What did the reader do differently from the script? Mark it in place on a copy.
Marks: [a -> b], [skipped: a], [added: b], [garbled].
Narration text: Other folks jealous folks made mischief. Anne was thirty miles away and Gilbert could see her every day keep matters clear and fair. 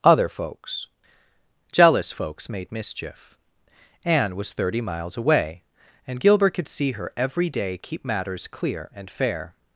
Other folks jealous folks made mischief. Anne was thirty miles away and Gilbert could see her every day keep matters clear and fair.